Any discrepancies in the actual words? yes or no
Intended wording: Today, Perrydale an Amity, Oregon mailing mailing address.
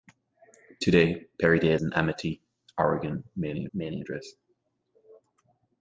no